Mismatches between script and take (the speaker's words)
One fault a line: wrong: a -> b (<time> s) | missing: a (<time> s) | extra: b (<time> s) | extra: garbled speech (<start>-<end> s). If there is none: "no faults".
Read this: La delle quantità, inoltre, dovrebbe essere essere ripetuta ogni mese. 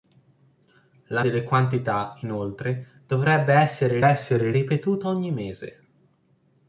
no faults